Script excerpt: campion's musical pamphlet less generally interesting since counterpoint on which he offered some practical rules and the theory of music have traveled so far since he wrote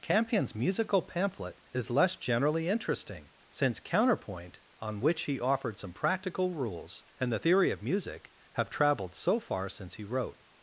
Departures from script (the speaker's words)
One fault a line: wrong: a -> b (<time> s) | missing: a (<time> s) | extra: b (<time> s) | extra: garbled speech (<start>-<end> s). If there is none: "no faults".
extra: is (1.7 s)